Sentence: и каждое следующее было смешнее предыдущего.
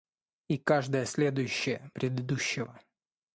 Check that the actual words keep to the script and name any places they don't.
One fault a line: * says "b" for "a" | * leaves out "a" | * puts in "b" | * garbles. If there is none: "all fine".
* leaves out "было смешнее"